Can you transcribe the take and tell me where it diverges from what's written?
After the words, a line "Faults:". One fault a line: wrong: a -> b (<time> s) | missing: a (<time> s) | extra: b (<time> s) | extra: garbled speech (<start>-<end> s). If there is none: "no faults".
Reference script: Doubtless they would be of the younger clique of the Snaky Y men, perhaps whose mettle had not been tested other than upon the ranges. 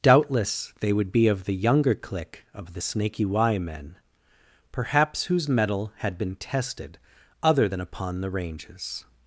Doubtless they would be of the younger clique of the Snaky Y men, perhaps whose mettle had been tested other than upon the ranges.
Faults:
missing: not (6.2 s)